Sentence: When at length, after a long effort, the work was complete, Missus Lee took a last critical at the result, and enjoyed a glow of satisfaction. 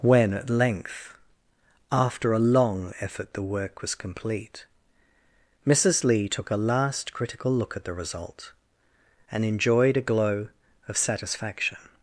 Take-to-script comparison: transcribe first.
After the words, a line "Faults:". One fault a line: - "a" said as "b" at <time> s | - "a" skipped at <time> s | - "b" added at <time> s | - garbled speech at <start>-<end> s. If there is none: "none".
When at length, after a long effort, the work was complete, Missus Lee took a last critical look at the result, and enjoyed a glow of satisfaction.
Faults:
- "look" added at 7.5 s